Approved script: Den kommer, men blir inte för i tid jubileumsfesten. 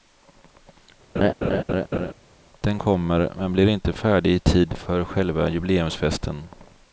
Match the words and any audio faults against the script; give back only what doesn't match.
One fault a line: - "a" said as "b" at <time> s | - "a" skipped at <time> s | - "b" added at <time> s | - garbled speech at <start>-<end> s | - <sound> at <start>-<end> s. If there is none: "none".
- laugh at 1.2-2.1 s
- "för" said as "färdig" at 3.9 s
- "för själva" added at 4.8 s